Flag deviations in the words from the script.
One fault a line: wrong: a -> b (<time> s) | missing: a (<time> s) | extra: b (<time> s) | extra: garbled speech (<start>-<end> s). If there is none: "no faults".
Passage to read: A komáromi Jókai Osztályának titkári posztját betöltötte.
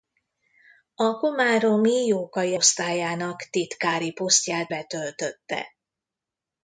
no faults